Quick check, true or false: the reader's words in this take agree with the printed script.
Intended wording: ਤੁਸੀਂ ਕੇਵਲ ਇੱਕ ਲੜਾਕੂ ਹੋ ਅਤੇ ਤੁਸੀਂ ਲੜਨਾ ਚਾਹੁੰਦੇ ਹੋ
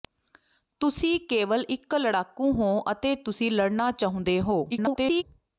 false